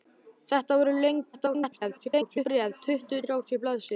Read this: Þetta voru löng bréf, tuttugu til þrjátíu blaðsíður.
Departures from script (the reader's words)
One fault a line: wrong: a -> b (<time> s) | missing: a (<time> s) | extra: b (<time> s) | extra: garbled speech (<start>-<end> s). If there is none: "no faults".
extra: garbled speech (1.3-2.5 s)
missing: til (3.2 s)